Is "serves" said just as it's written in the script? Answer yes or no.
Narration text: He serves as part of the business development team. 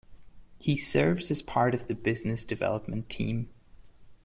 yes